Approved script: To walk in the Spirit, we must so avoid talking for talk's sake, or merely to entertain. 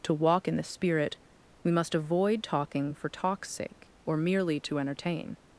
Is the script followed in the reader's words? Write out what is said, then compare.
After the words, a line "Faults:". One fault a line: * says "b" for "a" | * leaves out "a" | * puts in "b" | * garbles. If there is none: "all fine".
To walk in the Spirit, we must avoid talking for talk's sake, or merely to entertain.
Faults:
* leaves out "so"